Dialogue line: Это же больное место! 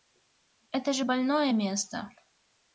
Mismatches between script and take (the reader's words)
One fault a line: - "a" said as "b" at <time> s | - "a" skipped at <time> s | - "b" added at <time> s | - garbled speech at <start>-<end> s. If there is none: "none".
none